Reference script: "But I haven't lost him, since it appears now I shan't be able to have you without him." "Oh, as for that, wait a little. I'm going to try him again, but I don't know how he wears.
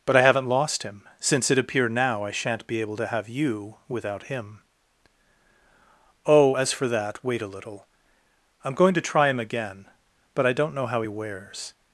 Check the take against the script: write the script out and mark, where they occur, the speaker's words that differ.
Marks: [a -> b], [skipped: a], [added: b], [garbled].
"But I haven't lost him, since it [appears -> appear] now I shan't be able to have you without him." "Oh, as for that, wait a little. I'm going to try him again, but I don't know how he wears.